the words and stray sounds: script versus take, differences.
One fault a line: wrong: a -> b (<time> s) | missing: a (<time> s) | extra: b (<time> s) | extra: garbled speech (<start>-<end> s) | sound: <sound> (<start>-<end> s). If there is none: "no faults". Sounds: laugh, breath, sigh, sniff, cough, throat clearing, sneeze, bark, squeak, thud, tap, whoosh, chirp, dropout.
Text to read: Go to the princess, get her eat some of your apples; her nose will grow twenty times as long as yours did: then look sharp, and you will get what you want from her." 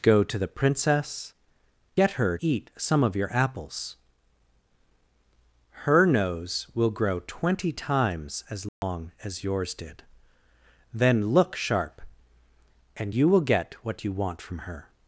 sound: dropout (8.7-8.8 s)